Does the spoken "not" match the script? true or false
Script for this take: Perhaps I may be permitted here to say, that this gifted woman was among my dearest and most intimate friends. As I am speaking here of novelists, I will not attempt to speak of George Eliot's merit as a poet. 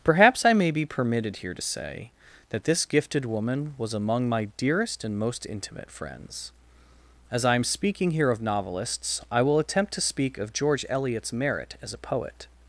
false